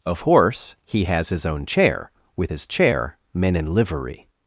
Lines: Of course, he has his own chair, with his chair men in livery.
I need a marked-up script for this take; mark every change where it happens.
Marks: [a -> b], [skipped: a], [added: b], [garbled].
Of [course, -> horse] he has his own chair, with his chair men in livery.